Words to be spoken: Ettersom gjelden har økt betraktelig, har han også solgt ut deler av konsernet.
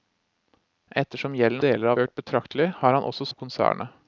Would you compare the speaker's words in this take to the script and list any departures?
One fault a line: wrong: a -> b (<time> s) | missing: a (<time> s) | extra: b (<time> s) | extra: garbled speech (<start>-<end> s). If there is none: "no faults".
wrong: har -> deler (1.7 s)
missing: solgt ut deler (3.3 s)